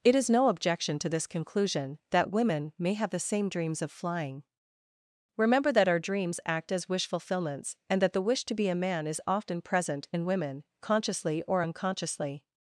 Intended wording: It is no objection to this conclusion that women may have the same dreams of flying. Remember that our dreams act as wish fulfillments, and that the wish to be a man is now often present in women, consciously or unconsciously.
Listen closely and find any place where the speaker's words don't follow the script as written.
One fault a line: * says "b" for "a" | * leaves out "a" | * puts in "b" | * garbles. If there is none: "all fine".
* leaves out "now"